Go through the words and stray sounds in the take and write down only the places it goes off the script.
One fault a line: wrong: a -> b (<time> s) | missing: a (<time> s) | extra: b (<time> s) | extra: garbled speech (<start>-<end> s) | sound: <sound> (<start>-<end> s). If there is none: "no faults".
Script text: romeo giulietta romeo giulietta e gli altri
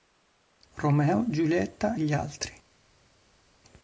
missing: romeo giulietta (1.9 s)